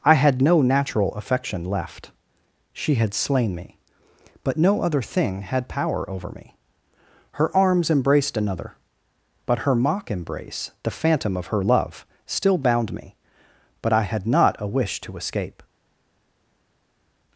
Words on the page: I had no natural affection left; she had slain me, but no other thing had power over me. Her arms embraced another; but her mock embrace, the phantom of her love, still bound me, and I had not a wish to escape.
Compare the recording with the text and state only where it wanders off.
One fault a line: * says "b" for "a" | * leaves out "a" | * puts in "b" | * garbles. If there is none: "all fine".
* says "but" for "and"